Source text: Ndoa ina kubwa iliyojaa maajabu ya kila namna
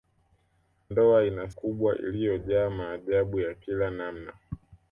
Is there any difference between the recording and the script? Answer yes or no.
no